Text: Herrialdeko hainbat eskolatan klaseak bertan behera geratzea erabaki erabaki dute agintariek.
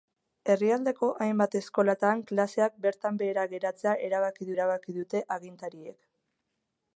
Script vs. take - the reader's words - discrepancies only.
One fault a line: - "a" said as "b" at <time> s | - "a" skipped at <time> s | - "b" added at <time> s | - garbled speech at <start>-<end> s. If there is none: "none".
none